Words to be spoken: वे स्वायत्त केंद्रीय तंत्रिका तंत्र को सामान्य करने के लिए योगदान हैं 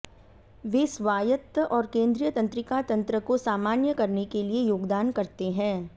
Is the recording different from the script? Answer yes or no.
yes